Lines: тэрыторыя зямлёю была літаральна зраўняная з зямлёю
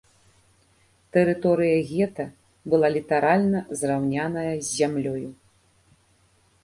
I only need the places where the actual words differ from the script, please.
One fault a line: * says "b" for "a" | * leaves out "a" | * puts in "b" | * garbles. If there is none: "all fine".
* says "гета" for "зямлёю"